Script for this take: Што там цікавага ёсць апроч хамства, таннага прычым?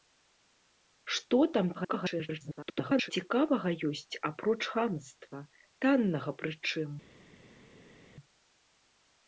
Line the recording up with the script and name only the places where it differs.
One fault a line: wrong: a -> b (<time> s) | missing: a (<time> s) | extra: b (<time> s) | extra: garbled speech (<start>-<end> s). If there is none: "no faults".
extra: garbled speech (1.7-3.1 s)